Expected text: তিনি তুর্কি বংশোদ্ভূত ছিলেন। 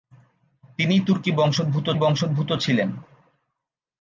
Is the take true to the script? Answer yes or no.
no